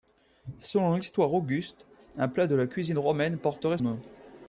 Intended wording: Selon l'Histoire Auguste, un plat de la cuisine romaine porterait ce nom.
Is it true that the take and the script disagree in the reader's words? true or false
true